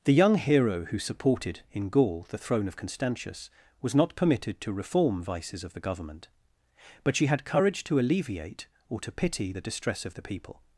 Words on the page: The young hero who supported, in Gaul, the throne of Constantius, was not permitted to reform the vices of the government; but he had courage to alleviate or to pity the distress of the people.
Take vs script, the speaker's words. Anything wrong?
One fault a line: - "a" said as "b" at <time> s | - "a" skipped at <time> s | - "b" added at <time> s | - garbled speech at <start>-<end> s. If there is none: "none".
- "the" skipped at 5.2 s
- "he" said as "she" at 7.2 s